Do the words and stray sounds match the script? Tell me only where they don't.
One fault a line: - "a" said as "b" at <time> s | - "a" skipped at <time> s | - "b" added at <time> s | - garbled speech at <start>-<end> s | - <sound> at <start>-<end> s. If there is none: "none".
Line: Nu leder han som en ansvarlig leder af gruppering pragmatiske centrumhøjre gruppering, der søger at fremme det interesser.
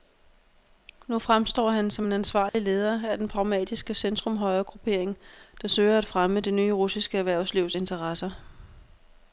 - "leder" said as "fremstår" at 1.2 s
- dropout at 2.5-2.5 s
- "gruppering" said as "den" at 3.2 s
- "nye russiske erhvervslivs" added at 6.5 s